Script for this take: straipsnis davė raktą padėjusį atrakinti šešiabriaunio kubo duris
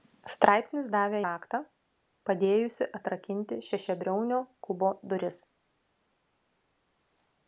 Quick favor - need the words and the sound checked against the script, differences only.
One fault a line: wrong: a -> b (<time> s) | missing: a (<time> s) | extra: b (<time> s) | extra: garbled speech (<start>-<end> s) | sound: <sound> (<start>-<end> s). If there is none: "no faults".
no faults